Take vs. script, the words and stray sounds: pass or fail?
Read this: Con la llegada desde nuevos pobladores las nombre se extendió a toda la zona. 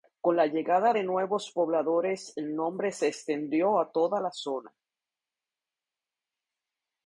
fail